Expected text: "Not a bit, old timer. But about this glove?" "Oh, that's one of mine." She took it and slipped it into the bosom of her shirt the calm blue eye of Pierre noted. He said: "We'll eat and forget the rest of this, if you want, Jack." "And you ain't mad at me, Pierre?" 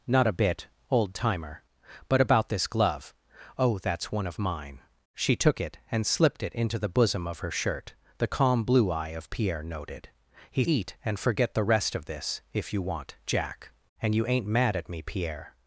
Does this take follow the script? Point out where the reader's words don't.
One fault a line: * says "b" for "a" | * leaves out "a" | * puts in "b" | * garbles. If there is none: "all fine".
* leaves out "said We'll"